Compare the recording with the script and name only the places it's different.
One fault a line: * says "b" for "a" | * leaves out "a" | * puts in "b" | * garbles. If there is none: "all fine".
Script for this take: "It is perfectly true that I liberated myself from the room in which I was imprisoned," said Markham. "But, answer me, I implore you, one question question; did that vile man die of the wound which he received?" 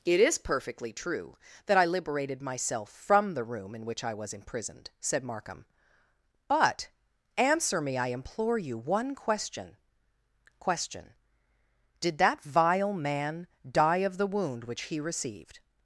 all fine